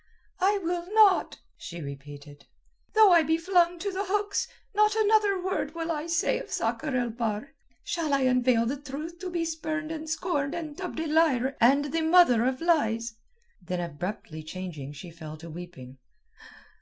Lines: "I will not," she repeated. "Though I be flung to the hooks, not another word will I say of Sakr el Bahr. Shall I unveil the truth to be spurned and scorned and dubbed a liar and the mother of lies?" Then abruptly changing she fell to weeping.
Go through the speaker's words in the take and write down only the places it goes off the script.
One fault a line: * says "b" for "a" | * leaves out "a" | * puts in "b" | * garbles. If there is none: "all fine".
all fine